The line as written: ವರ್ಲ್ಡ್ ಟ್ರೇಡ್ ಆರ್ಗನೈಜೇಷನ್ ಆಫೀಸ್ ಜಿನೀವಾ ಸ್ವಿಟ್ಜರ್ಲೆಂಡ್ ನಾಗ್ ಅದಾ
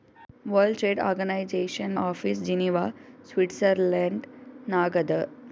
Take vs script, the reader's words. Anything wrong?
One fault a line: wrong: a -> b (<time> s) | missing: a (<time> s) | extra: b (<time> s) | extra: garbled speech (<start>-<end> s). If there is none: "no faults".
no faults